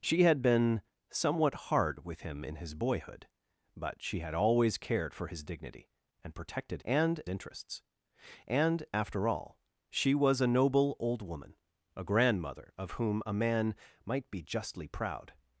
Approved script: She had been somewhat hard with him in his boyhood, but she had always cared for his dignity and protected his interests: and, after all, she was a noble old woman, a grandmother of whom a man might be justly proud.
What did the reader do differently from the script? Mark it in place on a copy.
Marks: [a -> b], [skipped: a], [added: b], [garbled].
She had been somewhat hard with him in his boyhood, but she had always cared for his dignity and protected [his -> and] interests: and, after all, she was a noble old woman, a grandmother of whom a man might be justly proud.